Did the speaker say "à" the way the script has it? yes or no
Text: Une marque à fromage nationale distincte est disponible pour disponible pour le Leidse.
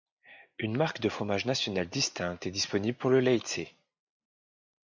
no